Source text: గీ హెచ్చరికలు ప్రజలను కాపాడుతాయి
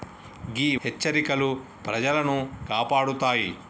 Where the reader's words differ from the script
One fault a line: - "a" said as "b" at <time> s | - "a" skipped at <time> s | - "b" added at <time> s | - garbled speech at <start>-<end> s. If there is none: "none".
none